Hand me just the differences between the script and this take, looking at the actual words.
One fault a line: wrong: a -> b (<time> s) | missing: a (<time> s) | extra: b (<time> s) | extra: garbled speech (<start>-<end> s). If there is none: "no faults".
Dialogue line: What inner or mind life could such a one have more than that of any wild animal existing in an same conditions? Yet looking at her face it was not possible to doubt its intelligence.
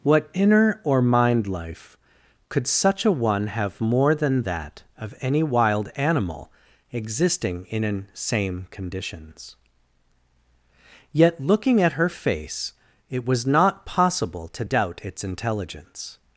no faults